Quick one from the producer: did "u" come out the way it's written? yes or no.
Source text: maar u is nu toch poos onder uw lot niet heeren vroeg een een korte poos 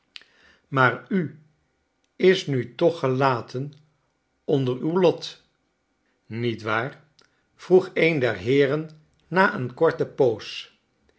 yes